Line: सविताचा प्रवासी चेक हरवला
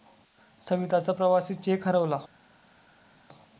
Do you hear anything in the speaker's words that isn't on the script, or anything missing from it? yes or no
no